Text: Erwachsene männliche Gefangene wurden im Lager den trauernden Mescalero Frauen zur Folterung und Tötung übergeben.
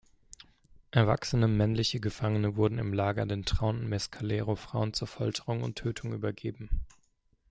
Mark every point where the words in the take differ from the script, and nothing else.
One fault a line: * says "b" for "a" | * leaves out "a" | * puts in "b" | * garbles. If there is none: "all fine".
all fine